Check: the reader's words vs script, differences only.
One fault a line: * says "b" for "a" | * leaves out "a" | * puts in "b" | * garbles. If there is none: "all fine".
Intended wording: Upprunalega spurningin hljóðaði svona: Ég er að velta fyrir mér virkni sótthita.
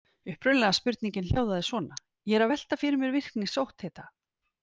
all fine